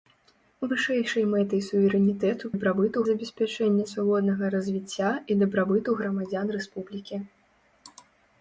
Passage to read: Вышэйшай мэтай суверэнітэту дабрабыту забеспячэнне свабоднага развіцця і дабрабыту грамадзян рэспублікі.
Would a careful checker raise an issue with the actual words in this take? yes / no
no